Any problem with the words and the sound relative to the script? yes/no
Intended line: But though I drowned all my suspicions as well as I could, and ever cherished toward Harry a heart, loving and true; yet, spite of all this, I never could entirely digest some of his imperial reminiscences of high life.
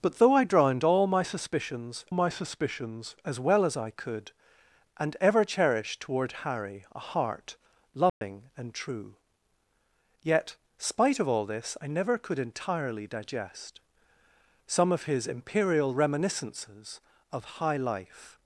yes